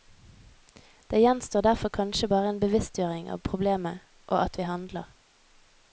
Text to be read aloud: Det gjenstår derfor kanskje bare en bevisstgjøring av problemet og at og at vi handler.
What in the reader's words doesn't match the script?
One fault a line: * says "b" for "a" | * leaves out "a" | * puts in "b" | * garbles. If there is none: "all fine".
* leaves out "og at"